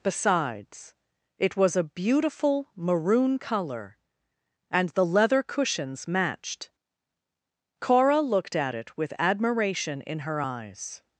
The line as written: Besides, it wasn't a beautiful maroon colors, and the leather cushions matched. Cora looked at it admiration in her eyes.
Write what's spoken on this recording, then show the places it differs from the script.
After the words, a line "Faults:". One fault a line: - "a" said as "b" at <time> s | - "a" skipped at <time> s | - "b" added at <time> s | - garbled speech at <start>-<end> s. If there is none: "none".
Besides, it was a beautiful maroon color, and the leather cushions matched. Cora looked at it with admiration in her eyes.
Faults:
- "wasn't" said as "was" at 1.6 s
- "colors" said as "color" at 3.4 s
- "with" added at 9.0 s